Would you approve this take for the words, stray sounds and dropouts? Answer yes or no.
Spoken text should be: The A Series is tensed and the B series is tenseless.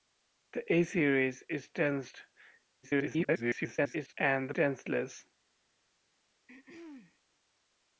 no